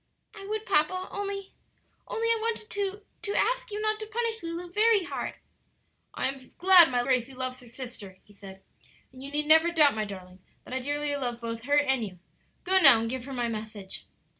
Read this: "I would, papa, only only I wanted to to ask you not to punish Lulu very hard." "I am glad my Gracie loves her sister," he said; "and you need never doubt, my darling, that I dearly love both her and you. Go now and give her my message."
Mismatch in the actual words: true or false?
false